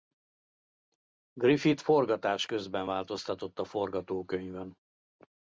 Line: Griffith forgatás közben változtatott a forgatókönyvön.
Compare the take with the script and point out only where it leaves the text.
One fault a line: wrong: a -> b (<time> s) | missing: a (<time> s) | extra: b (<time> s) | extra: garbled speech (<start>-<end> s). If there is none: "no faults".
no faults